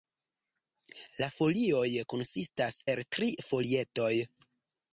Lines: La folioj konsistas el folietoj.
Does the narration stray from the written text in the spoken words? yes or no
yes